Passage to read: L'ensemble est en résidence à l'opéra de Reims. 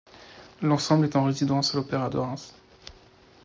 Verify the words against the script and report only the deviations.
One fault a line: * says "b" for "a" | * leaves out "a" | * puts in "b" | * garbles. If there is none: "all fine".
all fine